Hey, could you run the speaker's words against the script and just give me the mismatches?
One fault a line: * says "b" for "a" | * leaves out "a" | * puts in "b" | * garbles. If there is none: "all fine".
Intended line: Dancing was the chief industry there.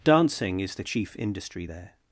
* says "is" for "was"